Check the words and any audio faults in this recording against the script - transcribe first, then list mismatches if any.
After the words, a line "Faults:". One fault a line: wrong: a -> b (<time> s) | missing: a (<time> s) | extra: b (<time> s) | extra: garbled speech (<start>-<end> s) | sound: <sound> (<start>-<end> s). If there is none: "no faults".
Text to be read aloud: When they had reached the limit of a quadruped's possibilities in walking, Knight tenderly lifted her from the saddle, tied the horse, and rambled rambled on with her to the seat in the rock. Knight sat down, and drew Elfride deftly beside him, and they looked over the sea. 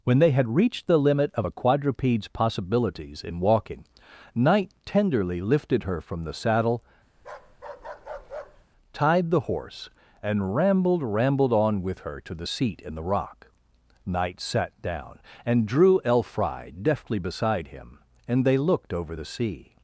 When they had reached the limit of a quadruped's possibilities in walking, Knight tenderly lifted her from the saddle, tied the horse, and rambled rambled on with her to the seat in the rock. Knight sat down, and drew Elfride deftly beside him, and they looked over the sea.
Faults:
sound: bark (7.2-8.7 s)